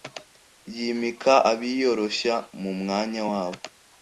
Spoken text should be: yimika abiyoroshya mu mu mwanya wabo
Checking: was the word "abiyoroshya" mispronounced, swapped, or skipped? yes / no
no